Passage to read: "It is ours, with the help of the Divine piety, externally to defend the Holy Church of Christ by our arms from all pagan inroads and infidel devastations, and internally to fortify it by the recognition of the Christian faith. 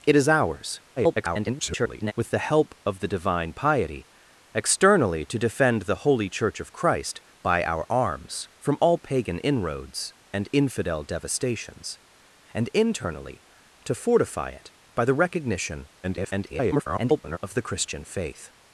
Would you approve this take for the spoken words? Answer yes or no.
no